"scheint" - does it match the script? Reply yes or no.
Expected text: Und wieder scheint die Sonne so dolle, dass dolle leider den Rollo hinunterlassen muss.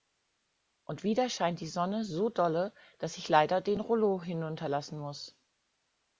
yes